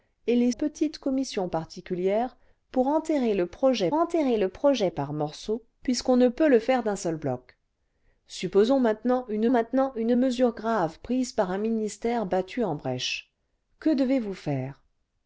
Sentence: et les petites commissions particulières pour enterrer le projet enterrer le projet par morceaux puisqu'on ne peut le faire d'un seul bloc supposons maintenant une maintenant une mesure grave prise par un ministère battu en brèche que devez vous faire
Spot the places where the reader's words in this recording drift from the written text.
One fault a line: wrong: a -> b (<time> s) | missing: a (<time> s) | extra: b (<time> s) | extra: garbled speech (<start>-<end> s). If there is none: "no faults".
no faults